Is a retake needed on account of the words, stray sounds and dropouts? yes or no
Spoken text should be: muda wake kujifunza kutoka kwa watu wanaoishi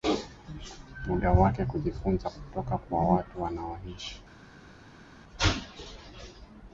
no